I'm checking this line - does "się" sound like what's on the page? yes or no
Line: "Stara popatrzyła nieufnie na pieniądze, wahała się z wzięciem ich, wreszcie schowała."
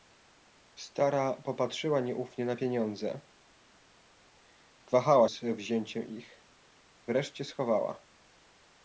no